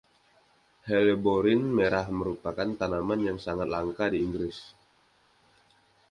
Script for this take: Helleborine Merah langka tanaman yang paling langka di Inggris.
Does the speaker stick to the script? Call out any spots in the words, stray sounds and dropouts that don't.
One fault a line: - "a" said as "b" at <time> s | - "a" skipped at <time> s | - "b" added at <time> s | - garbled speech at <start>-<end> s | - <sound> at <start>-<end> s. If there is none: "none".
- "langka" said as "merupakan" at 2.1 s
- "paling" said as "sangat" at 3.4 s